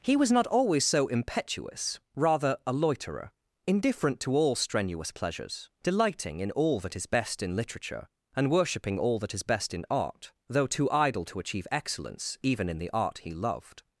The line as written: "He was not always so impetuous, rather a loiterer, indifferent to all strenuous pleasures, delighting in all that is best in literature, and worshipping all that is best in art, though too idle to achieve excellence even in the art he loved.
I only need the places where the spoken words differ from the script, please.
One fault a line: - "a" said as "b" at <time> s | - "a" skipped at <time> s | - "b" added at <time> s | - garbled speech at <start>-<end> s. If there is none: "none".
none